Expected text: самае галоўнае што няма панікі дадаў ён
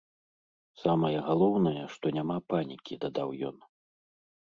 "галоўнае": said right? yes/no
yes